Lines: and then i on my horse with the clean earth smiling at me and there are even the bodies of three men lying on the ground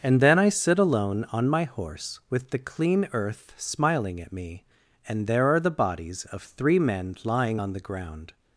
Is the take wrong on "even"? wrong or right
wrong